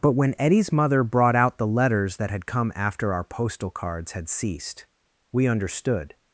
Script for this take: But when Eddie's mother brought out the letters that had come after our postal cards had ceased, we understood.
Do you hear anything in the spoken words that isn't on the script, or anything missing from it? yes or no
no